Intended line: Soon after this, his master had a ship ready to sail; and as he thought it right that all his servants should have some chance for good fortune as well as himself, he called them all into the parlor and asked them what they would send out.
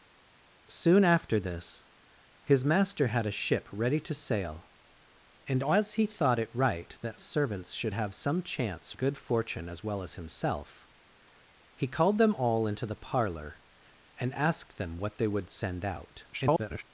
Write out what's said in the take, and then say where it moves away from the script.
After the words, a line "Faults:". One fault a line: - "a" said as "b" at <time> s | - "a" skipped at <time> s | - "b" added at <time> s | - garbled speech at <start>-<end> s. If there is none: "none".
Soon after this, his master had a ship ready to sail; and as he thought it right that servants should have some chance good fortune as well as himself, he called them all into the parlor and asked them what they would send out. [garbled]
Faults:
- "all his" skipped at 7.2 s
- "for" skipped at 8.9 s
- garbled speech at 16.3-16.8 s